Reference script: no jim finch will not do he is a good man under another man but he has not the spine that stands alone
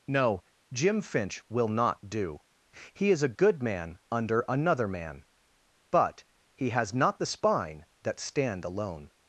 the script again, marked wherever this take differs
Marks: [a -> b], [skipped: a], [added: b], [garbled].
no jim finch will not do he is a good man under another man but he has not the spine that [stands -> stand] alone